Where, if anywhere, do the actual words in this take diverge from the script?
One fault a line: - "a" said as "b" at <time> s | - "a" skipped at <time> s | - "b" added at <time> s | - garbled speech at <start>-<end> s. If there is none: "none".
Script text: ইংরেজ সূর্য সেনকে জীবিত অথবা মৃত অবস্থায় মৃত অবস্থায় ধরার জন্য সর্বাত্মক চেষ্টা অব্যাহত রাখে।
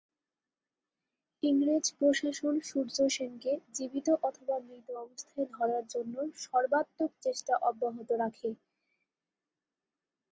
- "প্রশাসন" added at 2.0 s
- "মৃত অবস্থায়" skipped at 5.5 s